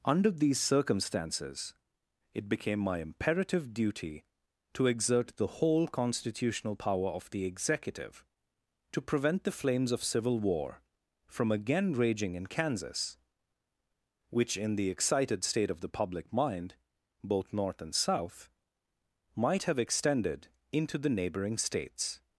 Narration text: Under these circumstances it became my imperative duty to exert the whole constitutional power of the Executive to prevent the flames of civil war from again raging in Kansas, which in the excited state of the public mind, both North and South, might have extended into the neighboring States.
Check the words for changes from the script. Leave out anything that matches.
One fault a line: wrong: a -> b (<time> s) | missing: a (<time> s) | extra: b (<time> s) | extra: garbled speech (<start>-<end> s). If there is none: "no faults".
no faults